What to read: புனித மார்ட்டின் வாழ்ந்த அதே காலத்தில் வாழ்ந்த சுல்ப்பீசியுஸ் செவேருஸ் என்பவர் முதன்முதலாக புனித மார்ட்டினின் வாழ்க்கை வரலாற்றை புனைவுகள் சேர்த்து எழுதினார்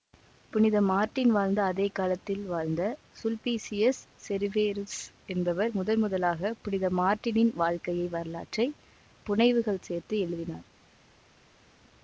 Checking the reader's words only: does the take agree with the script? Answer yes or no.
yes